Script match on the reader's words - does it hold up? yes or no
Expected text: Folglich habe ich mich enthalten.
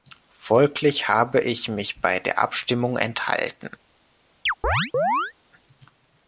no